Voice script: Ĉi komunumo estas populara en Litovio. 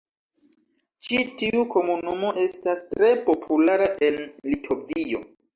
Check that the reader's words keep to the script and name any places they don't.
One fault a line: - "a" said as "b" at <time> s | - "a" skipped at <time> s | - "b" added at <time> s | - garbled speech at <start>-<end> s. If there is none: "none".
- "tiu" added at 1.4 s
- "tre" added at 2.9 s